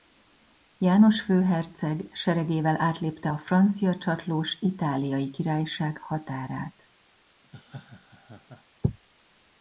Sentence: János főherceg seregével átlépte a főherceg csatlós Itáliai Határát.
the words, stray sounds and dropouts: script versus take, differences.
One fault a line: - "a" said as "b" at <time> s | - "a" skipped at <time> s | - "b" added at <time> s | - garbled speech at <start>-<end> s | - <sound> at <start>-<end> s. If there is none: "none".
- "főherceg" said as "francia" at 3.4 s
- "Királyság" added at 5.3 s
- laugh at 7.4-8.6 s